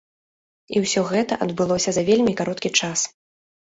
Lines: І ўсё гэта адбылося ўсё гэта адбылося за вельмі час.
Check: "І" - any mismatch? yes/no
no